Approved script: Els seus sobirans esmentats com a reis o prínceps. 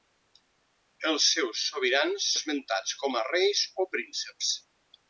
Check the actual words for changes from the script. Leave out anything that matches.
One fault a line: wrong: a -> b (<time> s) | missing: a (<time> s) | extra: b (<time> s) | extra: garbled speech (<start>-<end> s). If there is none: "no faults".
no faults